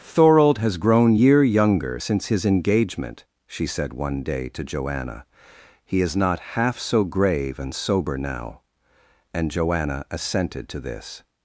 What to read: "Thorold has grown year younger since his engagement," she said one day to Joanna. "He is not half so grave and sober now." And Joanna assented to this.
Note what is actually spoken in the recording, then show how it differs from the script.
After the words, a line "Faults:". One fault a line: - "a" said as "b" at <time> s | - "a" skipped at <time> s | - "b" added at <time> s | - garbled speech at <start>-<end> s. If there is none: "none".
"Thorold has grown year younger since his engagement," she said one day to Joanna. "He is not half so grave and sober now." And Joanna assented to this.
Faults:
none